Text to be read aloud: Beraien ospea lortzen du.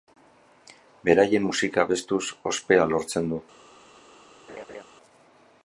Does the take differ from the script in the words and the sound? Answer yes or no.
yes